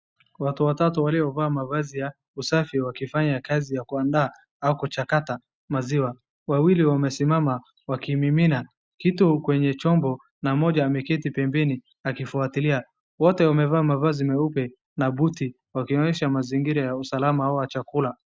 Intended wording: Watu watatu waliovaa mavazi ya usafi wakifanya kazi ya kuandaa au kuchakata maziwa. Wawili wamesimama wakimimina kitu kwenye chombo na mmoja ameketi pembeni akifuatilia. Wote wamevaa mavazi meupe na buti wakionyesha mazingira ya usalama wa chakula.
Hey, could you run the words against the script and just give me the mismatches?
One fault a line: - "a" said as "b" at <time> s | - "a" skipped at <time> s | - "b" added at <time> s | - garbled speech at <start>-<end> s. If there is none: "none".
none